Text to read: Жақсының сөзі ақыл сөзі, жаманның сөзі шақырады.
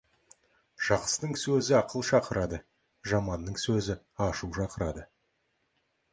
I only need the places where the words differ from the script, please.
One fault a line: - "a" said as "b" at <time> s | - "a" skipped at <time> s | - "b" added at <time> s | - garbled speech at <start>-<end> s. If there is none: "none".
- "сөзі" said as "шақырады" at 2.1 s
- "ашу" added at 4.3 s